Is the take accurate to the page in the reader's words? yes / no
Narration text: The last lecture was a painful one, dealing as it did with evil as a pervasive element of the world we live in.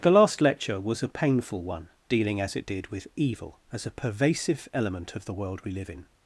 yes